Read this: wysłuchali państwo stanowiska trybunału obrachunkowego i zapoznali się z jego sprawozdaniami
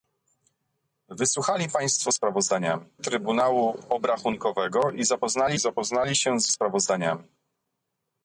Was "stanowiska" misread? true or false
true